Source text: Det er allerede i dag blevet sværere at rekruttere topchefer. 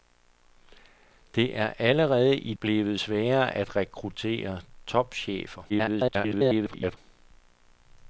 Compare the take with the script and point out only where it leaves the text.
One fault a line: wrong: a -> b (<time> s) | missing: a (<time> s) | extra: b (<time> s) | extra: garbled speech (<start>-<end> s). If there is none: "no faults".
missing: dag (2.5 s)
extra: garbled speech (5.7-7.0 s)